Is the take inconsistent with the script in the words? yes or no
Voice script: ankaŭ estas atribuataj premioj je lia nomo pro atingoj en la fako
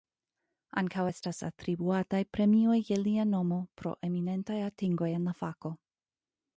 yes